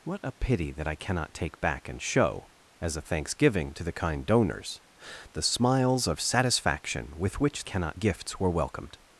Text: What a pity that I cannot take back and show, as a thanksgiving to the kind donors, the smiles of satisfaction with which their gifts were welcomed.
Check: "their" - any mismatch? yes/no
yes